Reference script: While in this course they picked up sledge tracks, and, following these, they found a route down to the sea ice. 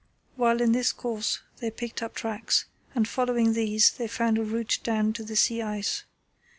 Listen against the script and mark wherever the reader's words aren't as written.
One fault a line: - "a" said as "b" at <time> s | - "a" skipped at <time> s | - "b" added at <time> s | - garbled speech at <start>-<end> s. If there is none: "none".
- "sledge" skipped at 2.2 s